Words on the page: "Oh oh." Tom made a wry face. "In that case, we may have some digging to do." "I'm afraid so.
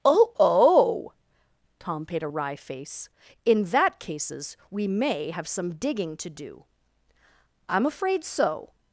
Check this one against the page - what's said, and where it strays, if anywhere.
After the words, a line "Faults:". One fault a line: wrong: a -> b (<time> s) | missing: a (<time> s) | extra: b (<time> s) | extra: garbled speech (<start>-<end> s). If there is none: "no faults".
"Oh oh." Tom paid a wry face. "In that cases, we may have some digging to do." "I'm afraid so.
Faults:
wrong: made -> paid (2.0 s)
wrong: case -> cases (4.0 s)